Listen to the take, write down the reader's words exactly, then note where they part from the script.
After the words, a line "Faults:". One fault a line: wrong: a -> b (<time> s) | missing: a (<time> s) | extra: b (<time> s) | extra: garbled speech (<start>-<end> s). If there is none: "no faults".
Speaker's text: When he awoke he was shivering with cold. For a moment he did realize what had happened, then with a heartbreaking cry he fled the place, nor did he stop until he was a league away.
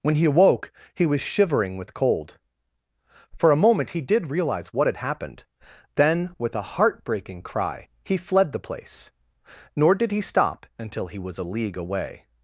When he awoke he was shivering with cold. For a moment he did realize what had happened, then with a heartbreaking cry he fled the place, nor did he stop until he was a league away.
Faults:
no faults